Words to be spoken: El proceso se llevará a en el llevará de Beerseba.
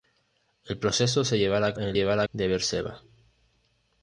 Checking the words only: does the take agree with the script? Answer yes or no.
yes